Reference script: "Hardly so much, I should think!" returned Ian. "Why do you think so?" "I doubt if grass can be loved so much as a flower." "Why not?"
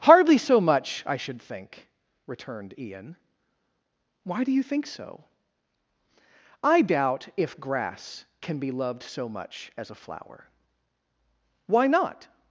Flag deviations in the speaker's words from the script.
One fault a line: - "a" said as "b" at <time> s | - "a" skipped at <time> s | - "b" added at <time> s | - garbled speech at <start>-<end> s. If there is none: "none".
none